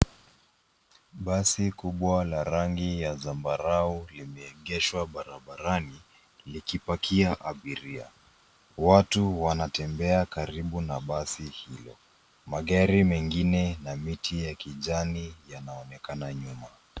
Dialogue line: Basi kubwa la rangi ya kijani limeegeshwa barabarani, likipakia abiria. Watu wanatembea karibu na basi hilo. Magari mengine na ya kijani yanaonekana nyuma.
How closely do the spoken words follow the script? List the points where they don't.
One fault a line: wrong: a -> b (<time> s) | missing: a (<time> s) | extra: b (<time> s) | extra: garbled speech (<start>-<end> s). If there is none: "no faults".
wrong: kijani -> zambarau (3.1 s)
extra: miti (14.0 s)